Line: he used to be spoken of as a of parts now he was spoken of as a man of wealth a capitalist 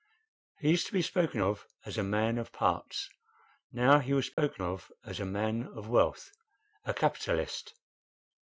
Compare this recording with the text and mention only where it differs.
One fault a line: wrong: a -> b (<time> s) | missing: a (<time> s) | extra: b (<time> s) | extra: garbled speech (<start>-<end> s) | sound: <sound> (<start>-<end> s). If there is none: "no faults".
extra: man (2.0 s)
sound: dropout (4.3-4.4 s)